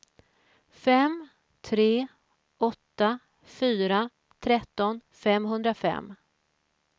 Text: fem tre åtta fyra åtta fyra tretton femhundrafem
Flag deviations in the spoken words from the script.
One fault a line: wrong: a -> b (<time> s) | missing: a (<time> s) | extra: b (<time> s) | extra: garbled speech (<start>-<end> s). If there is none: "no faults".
missing: åtta fyra (4.1 s)